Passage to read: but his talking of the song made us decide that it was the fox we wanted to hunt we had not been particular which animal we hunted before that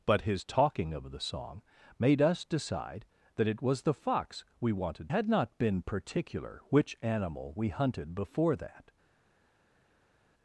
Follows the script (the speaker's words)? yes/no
no